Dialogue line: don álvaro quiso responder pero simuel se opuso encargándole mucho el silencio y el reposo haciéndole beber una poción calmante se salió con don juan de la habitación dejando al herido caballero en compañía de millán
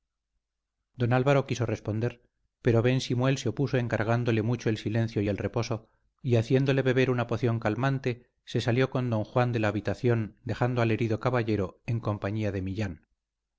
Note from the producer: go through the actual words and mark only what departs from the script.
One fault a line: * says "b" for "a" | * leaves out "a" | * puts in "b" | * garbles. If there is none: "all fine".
* puts in "ben"
* puts in "y"